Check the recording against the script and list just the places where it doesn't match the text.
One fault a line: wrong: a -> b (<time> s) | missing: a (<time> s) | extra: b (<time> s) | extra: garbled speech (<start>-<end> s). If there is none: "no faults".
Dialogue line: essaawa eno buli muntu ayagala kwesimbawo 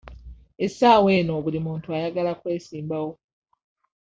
no faults